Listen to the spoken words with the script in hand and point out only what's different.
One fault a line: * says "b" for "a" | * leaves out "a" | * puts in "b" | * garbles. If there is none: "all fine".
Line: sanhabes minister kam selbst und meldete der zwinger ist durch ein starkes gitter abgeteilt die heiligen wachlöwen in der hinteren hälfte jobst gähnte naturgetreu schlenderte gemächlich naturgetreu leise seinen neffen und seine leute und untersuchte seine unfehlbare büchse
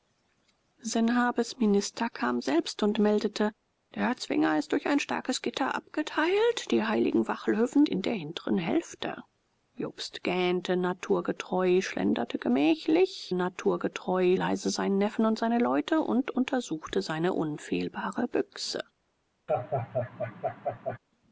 all fine